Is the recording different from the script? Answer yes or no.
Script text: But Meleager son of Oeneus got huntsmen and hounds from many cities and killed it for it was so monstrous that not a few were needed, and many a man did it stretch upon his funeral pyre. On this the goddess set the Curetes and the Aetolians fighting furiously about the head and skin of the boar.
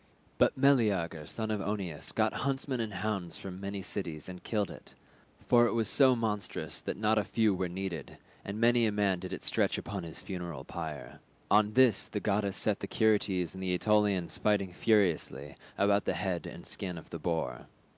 no